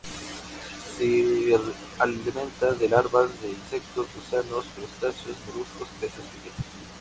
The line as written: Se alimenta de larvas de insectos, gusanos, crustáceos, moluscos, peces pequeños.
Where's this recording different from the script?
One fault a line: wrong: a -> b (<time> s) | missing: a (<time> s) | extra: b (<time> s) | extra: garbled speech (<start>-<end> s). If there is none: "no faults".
no faults